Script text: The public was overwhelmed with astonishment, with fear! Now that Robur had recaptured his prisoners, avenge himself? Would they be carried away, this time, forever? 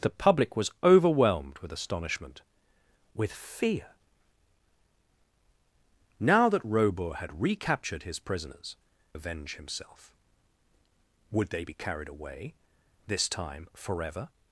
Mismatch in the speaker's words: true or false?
false